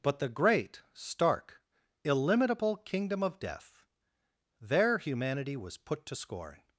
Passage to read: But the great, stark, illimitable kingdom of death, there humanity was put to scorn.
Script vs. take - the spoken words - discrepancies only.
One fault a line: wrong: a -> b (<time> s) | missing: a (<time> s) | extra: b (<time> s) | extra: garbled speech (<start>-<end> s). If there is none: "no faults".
no faults